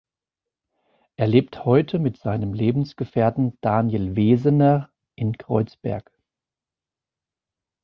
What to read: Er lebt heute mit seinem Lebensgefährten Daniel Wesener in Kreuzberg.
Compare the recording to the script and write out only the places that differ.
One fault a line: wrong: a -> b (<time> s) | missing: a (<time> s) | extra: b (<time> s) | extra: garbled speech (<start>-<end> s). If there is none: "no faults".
no faults